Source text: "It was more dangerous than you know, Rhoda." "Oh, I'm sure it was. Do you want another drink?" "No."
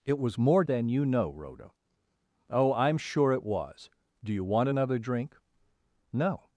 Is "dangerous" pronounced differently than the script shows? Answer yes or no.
yes